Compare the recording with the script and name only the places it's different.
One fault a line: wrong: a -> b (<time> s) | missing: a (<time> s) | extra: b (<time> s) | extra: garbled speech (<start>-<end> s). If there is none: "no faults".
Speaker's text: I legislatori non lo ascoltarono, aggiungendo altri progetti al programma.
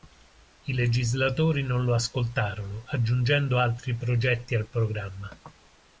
no faults